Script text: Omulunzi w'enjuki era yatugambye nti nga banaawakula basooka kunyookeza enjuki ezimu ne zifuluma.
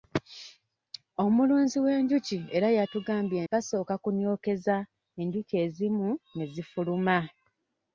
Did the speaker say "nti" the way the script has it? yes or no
no